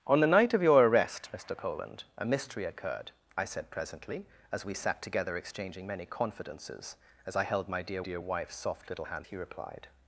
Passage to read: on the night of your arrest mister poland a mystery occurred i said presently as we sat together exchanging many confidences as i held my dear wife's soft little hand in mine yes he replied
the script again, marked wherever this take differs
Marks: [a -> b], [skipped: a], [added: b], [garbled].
on the night of your arrest mister poland a mystery occurred i said presently as we sat together exchanging many confidences as i held my dear [added: dear] wife's soft little hand [skipped: in mine yes] he replied